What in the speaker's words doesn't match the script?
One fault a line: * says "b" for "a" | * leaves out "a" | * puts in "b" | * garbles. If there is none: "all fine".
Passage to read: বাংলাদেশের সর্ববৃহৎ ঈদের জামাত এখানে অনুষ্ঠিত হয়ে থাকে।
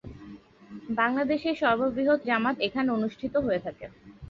* leaves out "ঈদের"